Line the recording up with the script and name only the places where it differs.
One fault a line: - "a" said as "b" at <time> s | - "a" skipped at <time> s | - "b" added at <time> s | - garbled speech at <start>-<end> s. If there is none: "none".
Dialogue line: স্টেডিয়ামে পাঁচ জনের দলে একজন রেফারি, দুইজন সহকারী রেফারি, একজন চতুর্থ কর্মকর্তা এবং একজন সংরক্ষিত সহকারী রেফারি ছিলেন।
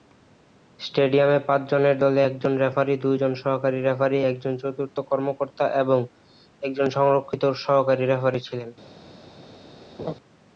none